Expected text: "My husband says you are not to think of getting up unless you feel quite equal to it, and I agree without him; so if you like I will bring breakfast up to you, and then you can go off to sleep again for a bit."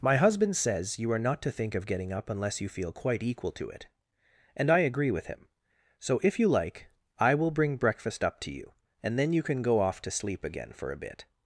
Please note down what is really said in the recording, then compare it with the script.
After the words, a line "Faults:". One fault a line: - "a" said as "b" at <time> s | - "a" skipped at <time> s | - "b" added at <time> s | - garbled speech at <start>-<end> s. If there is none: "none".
"My husband says you are not to think of getting up unless you feel quite equal to it, and I agree with him; so if you like I will bring breakfast up to you, and then you can go off to sleep again for a bit."
Faults:
- "without" said as "with" at 5.1 s